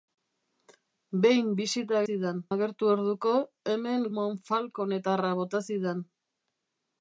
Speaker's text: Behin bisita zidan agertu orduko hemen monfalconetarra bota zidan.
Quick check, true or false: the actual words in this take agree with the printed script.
true